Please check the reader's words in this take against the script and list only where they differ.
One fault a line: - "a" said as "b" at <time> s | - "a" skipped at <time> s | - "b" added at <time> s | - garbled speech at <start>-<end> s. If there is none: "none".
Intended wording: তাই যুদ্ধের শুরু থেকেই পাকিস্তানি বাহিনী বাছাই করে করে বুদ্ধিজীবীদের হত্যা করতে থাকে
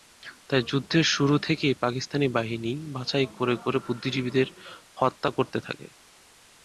none